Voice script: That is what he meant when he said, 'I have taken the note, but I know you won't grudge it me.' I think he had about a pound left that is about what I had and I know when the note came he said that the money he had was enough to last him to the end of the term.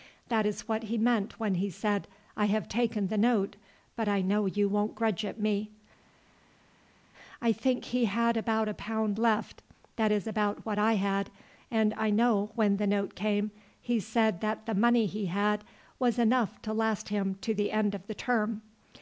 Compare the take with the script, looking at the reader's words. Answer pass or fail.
pass